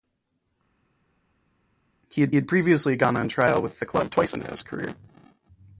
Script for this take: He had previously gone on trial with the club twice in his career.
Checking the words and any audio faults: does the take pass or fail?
fail